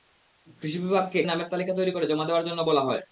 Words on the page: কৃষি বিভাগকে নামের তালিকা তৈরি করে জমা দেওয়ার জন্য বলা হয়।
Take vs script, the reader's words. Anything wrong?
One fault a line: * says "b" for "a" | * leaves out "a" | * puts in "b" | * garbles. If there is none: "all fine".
all fine